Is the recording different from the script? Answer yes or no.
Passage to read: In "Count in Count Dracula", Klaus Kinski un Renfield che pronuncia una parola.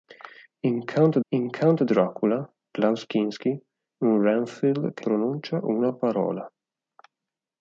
no